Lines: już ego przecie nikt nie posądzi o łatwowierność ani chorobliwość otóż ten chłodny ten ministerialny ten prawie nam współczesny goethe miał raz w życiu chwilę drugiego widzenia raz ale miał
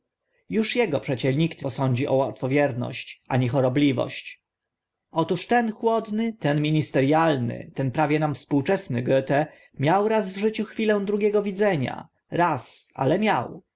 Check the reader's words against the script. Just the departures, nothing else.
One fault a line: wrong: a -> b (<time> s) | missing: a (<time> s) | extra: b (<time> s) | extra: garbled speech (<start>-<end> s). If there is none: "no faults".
missing: nie (1.6 s)